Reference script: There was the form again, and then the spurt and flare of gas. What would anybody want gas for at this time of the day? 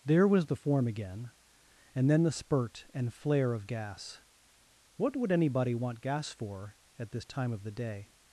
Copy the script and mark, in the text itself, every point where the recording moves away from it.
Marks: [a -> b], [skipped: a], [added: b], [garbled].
There was the form again, and then the spurt and flare of gas. What would anybody want gas for at this time of the day?